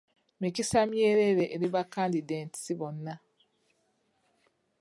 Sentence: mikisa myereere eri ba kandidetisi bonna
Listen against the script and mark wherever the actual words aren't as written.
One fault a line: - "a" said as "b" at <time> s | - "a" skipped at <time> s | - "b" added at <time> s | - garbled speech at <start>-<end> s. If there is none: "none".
none